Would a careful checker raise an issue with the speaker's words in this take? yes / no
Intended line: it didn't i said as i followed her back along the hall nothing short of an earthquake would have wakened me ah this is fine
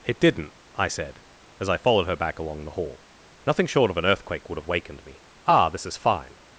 no